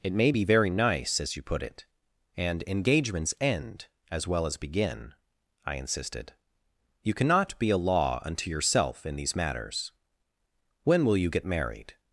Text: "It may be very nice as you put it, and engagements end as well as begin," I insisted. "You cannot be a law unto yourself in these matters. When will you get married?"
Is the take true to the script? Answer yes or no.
yes